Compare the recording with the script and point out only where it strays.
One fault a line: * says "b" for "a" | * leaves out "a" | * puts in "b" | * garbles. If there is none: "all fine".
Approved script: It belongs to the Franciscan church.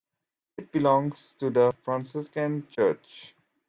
all fine